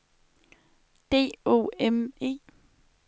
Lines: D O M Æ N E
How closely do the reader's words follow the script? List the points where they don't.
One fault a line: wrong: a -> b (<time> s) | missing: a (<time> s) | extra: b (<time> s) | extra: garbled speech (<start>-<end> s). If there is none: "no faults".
missing: Æ N (2.1 s)